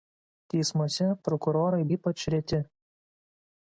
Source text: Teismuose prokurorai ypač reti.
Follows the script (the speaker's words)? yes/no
yes